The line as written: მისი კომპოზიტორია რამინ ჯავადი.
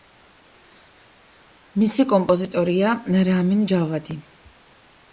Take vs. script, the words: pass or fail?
pass